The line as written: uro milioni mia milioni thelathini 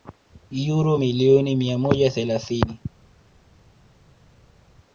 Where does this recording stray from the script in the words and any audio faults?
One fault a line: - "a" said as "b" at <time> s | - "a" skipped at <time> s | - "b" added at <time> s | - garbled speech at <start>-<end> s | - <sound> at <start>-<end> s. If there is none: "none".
- "milioni" said as "moja" at 1.8 s